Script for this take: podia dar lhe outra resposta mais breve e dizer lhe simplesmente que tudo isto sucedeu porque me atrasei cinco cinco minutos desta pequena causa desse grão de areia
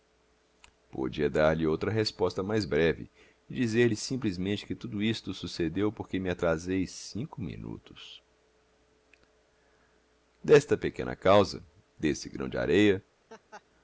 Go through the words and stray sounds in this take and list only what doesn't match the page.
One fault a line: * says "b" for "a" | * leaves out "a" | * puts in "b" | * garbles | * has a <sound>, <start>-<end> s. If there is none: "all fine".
* leaves out "cinco"
* has a laugh, 13.3-13.6 s